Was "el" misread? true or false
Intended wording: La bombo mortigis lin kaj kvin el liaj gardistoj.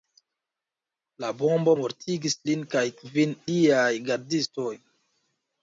true